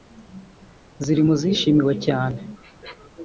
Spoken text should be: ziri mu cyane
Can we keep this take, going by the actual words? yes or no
no